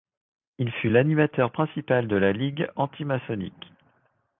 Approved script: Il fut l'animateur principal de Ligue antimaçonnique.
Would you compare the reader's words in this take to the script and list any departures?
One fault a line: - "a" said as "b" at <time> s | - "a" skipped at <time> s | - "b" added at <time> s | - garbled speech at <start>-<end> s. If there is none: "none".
- "la" added at 2.1 s